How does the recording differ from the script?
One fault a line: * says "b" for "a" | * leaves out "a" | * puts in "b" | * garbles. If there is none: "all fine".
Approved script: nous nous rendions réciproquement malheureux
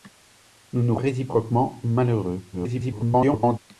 * leaves out "rendions"
* garbles